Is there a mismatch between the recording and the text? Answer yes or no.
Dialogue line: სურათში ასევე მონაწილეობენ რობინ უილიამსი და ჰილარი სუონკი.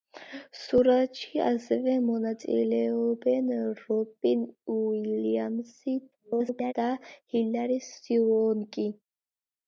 yes